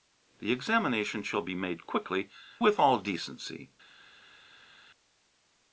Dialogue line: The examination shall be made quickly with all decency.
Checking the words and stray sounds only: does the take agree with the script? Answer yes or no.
yes